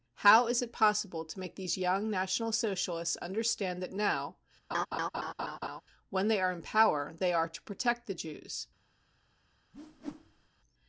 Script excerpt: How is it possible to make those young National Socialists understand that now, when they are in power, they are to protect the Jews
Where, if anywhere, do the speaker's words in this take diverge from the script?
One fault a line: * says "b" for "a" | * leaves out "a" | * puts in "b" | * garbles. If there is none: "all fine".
* says "these" for "those"